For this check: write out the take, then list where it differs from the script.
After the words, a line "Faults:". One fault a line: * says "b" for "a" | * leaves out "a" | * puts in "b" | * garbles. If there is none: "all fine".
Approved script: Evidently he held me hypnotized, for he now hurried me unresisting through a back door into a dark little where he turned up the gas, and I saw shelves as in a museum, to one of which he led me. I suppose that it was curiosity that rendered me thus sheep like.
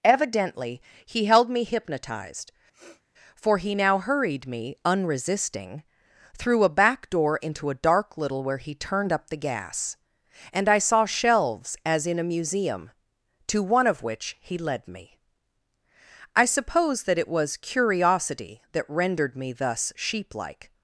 Evidently he held me hypnotized, for he now hurried me unresisting through a back door into a dark little where he turned up the gas, and I saw shelves as in a museum, to one of which he led me. I suppose that it was curiosity that rendered me thus sheep like.
Faults:
all fine